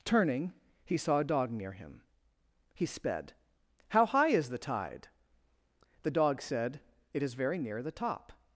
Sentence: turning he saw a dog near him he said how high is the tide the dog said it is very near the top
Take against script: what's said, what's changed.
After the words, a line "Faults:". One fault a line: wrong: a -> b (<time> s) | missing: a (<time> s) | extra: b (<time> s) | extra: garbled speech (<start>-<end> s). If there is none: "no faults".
turning he saw a dog near him he sped how high is the tide the dog said it is very near the top
Faults:
wrong: said -> sped (2.9 s)